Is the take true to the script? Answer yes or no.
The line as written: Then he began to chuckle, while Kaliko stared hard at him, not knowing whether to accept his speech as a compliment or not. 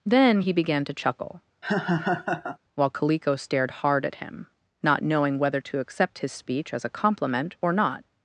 yes